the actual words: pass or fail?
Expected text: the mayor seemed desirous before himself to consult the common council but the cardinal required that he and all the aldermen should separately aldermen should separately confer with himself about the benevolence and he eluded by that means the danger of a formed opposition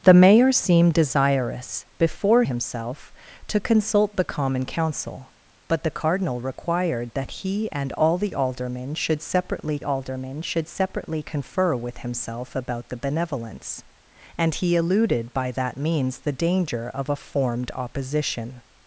pass